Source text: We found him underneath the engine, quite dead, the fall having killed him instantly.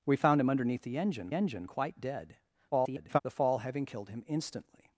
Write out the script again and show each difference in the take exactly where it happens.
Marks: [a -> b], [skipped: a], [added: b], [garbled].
We found him underneath the engine, [added: engine] quite dead, [garbled] the fall having killed him instantly.